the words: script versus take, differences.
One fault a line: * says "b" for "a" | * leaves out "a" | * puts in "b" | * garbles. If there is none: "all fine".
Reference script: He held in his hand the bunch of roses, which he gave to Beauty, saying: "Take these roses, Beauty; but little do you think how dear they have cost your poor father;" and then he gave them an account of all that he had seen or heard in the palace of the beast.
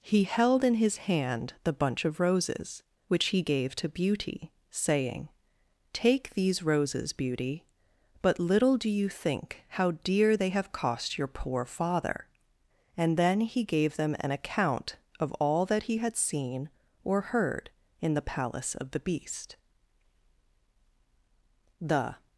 * puts in "The"